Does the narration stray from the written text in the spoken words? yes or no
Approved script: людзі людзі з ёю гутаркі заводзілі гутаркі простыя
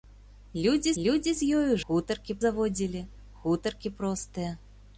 no